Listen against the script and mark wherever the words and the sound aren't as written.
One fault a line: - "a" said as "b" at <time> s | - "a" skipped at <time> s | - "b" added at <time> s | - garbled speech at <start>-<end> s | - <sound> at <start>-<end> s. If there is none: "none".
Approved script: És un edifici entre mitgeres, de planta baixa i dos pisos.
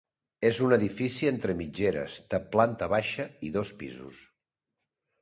none